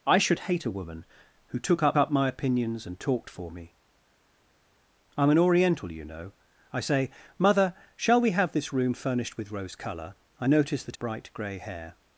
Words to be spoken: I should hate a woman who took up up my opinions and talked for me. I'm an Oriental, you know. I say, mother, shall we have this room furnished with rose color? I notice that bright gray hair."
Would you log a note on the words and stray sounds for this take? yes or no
no